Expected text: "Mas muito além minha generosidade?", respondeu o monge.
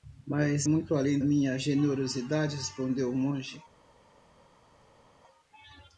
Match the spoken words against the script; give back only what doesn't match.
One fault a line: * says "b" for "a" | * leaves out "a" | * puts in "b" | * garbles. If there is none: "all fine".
all fine